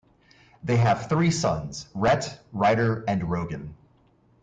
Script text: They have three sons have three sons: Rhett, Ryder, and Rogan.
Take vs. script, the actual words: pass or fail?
fail